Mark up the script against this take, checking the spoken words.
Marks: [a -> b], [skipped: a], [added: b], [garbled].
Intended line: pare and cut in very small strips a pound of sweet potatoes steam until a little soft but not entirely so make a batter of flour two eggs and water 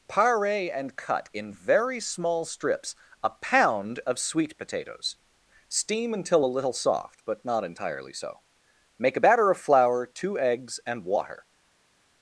pare and cut in very small strips a pound of sweet potatoes steam until a little soft but not entirely so make a batter of flour two eggs and water